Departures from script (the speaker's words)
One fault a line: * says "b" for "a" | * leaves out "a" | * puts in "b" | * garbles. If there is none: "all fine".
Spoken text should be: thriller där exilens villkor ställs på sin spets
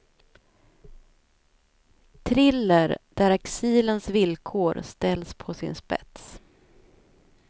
all fine